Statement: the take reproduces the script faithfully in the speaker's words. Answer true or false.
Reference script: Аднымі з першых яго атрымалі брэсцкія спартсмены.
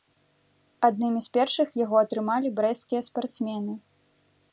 true